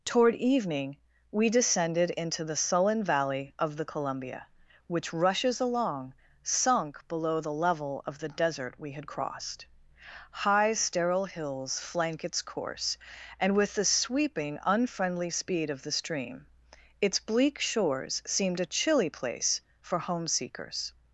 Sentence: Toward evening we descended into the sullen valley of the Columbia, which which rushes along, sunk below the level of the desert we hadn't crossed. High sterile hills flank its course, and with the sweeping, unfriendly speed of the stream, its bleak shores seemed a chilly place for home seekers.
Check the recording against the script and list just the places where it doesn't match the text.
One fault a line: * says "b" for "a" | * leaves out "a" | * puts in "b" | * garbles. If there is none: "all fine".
* leaves out "which"
* says "had" for "hadn't"